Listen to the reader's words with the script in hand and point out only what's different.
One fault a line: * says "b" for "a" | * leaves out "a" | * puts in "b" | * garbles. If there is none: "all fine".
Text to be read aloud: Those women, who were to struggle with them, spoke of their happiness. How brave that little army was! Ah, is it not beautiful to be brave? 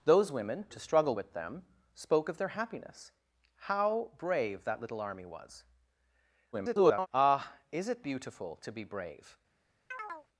* leaves out "who were"
* garbles
* leaves out "not"